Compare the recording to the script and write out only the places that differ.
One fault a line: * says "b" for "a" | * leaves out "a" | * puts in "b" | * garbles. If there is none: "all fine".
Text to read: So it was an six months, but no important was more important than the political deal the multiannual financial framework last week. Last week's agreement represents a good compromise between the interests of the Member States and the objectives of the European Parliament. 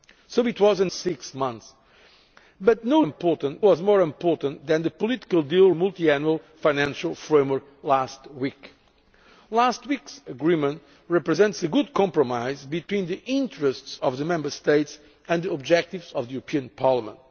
all fine